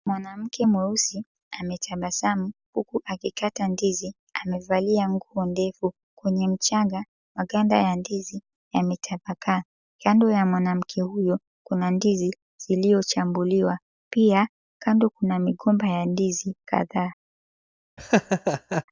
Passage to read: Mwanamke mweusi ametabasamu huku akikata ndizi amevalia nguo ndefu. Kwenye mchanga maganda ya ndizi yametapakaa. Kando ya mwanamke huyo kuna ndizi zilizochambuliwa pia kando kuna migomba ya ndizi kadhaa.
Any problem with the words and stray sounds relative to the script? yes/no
yes